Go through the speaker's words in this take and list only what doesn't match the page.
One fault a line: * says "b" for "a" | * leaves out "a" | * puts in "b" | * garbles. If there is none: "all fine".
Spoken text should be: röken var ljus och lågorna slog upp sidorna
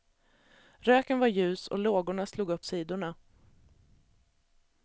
all fine